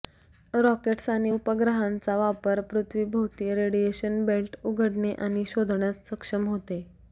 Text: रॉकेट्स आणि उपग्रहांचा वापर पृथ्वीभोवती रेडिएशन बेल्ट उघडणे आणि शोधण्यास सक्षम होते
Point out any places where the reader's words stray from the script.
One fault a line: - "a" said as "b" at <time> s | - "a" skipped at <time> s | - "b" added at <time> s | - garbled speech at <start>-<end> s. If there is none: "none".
none